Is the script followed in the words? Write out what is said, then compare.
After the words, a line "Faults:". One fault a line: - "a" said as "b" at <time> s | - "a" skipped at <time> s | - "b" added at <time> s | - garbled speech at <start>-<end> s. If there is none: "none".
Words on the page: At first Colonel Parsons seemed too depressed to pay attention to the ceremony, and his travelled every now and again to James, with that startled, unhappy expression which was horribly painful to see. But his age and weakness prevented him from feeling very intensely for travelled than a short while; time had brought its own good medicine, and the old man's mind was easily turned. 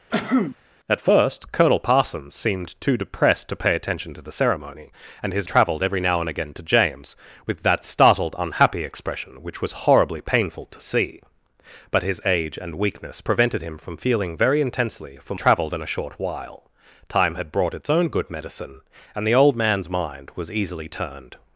At first Colonel Parsons seemed too depressed to pay attention to the ceremony, and his travelled every now and again to James, with that startled, unhappy expression which was horribly painful to see. But his age and weakness prevented him from feeling very intensely for travelled than a short while; time had brought its own good medicine, and the old man's mind was easily turned.
Faults:
none